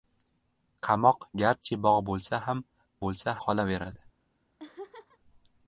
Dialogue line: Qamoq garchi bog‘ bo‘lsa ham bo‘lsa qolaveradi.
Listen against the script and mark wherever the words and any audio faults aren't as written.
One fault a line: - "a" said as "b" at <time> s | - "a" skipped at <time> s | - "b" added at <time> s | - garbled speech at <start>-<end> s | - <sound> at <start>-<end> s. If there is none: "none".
- laugh at 4.6-5.2 s